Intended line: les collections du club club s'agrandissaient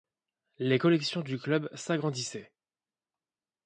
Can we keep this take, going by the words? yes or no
no